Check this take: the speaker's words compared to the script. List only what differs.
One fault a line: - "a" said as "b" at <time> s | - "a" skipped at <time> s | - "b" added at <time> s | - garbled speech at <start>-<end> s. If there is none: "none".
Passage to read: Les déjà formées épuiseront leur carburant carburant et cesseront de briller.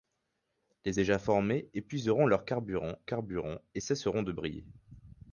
none